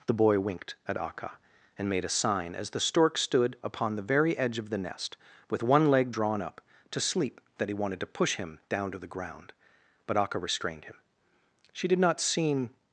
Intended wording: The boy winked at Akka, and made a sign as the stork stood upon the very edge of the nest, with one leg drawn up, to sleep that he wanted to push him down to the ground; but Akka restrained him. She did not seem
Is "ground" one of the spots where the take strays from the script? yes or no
no